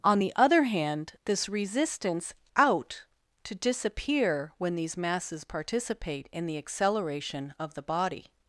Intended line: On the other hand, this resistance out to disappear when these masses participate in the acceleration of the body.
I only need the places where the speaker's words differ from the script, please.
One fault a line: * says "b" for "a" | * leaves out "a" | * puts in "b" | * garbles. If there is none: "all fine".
all fine